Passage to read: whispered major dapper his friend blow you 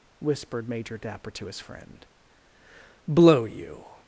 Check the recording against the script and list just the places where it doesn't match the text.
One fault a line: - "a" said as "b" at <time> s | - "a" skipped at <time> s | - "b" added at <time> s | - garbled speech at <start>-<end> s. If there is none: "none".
- "to" added at 1.3 s